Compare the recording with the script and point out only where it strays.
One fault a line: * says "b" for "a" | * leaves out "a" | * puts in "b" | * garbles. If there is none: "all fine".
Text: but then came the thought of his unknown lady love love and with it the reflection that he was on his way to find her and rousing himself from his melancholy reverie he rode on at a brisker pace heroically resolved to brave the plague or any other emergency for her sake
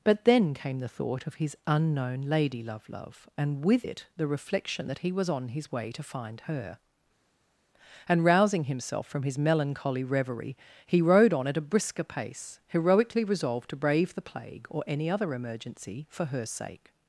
all fine